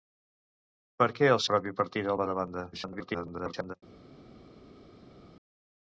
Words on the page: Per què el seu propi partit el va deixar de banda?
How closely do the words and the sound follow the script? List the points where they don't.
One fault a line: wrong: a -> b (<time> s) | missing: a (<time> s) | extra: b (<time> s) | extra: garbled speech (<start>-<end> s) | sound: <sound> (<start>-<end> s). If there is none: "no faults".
missing: seu (1.4 s)
missing: deixar (2.3 s)
extra: garbled speech (2.7-3.7 s)